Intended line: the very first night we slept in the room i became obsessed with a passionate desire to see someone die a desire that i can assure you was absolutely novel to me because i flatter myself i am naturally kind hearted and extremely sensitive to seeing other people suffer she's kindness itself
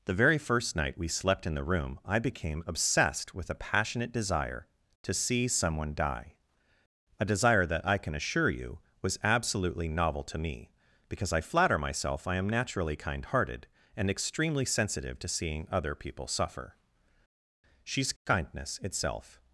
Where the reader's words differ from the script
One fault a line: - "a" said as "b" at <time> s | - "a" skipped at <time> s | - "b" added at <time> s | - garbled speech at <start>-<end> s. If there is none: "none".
none